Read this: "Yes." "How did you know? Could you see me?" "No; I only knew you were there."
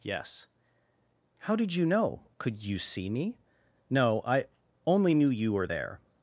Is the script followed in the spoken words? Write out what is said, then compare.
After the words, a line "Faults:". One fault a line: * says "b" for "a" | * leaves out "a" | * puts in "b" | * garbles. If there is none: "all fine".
"Yes." "How did you know? Could you see me?" "No; I only knew you were there."
Faults:
all fine